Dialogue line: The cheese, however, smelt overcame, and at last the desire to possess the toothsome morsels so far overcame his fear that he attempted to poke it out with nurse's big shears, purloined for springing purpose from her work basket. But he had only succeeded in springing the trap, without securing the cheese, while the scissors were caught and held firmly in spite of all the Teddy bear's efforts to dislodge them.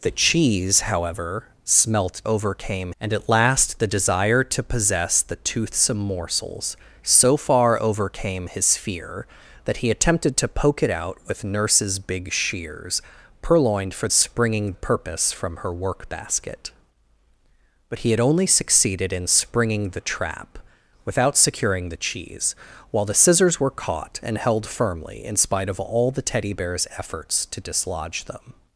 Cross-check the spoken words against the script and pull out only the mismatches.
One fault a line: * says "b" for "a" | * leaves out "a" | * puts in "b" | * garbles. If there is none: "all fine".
all fine